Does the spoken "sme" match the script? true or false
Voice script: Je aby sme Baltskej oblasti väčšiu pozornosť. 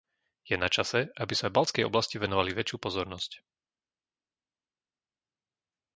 true